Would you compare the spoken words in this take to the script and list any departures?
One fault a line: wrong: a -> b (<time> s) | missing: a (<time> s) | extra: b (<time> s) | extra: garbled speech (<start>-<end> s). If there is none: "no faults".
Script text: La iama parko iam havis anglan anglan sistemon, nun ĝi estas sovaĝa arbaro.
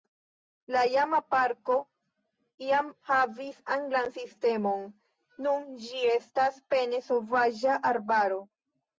missing: anglan (4.1 s)
extra: pene (6.8 s)